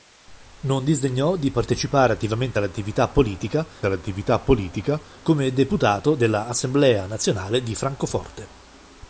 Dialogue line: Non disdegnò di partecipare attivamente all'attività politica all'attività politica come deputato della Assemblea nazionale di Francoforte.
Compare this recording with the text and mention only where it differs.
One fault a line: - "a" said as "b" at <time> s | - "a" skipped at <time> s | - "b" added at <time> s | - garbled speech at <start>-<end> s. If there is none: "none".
none